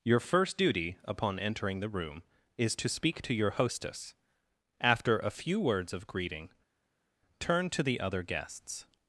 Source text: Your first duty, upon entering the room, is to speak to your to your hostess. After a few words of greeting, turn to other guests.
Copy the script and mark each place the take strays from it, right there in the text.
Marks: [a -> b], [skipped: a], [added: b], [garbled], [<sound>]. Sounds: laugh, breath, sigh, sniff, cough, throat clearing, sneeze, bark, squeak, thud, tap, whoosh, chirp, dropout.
Your first duty, upon entering the room, is to speak to your [skipped: to your] hostess. After a few words of greeting, turn to [added: the] other guests.